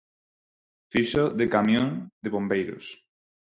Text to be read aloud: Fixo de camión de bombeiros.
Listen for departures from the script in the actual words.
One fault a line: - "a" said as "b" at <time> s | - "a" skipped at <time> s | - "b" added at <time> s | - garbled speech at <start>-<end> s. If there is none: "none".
none